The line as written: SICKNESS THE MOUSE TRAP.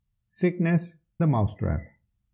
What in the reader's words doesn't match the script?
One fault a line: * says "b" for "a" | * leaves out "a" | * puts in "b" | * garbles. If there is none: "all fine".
all fine